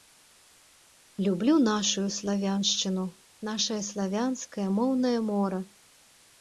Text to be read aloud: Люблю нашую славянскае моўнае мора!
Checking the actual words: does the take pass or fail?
fail